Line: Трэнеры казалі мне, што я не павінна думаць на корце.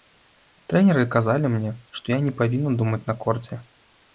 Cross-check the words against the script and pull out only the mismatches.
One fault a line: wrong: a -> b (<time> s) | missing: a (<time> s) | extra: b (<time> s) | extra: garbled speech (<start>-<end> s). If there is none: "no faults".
no faults